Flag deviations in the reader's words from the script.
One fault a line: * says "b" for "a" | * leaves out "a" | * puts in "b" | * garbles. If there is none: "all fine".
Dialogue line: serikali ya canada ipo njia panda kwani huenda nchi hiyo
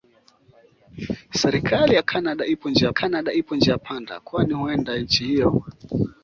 * puts in "canada ipo njia"